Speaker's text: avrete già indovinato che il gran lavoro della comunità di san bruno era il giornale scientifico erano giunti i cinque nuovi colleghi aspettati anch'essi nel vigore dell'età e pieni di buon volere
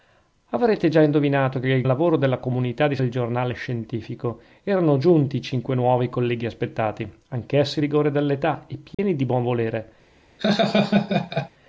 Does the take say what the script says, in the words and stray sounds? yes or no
no